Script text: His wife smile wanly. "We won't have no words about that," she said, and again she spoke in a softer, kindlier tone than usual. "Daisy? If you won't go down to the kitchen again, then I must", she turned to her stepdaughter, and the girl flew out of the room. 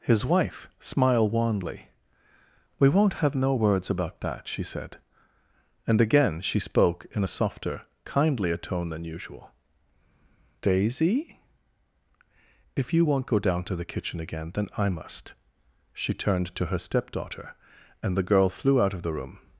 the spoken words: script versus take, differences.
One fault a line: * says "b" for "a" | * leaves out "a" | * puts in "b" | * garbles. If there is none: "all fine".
* says "smiled" for "smile"